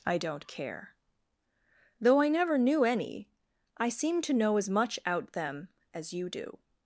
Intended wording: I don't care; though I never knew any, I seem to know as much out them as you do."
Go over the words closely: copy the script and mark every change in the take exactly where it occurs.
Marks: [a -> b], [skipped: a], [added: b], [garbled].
I don't care; though I never knew any, I seem to know as much out them as you do."